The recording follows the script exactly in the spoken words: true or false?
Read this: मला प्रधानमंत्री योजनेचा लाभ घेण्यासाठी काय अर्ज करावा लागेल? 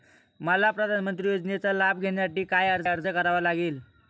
false